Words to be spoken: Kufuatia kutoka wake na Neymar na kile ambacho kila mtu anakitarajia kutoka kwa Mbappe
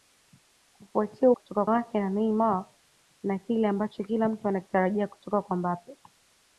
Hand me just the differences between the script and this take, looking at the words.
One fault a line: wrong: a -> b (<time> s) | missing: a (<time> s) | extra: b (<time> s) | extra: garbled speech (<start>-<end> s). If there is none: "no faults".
no faults